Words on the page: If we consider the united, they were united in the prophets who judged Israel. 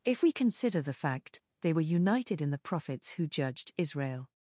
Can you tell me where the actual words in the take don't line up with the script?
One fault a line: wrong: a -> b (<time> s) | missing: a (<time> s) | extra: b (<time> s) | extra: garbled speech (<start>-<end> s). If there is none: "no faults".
wrong: united -> fact (0.9 s)